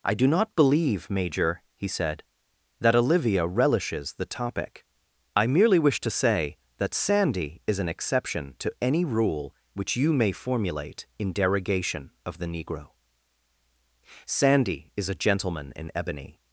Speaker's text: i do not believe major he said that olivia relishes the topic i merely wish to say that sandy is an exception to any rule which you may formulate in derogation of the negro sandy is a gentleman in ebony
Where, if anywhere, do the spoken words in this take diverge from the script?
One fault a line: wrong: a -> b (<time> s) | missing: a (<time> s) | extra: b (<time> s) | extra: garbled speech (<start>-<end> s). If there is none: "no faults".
no faults